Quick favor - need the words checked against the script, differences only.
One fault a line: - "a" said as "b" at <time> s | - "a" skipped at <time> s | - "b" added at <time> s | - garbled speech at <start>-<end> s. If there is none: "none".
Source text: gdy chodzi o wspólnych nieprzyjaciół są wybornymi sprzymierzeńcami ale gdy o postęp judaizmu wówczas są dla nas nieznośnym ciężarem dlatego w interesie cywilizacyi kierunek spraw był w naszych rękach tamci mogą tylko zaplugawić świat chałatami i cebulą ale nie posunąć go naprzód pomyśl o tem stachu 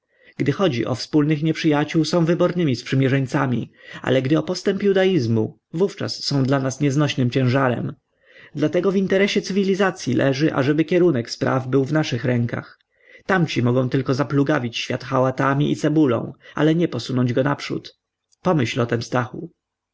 - "leży ażeby" added at 10.1 s